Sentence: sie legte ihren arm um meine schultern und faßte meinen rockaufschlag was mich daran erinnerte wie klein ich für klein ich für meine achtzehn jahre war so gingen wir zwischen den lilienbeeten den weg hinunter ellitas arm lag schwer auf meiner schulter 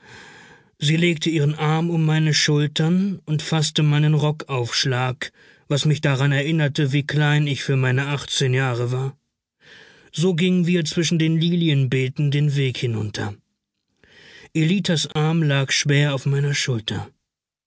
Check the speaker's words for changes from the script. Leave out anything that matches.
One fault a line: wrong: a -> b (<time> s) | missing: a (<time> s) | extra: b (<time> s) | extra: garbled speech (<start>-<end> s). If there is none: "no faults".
missing: klein ich für (7.8 s)